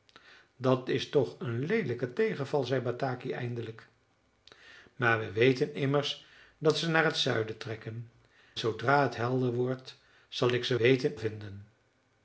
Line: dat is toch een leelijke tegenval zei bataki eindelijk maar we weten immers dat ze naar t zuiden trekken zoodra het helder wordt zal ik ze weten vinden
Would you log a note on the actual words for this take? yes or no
no